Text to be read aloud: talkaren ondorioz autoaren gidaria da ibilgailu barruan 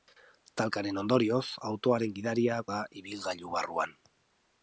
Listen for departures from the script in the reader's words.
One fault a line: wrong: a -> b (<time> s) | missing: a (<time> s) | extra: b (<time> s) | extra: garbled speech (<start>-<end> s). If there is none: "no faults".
no faults